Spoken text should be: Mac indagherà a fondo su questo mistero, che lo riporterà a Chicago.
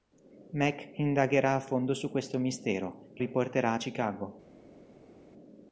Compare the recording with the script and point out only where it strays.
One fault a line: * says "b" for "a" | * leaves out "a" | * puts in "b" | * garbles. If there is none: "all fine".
* leaves out "lo"